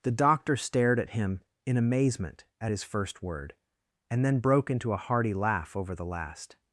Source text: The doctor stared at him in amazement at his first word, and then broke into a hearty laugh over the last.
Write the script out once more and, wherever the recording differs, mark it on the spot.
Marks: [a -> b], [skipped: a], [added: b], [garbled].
The doctor stared at him in amazement at his first word, and then broke into a hearty laugh over the last.